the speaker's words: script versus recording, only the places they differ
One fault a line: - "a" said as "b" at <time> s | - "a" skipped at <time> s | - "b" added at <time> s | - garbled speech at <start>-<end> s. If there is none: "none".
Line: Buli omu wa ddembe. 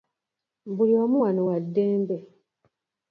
- "wano" added at 1.2 s